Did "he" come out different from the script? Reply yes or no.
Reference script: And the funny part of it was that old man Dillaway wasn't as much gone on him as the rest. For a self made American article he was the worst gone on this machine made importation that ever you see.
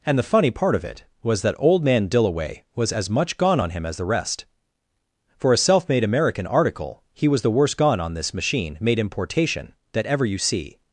no